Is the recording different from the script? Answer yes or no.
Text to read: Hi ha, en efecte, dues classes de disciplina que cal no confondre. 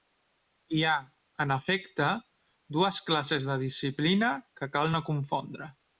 no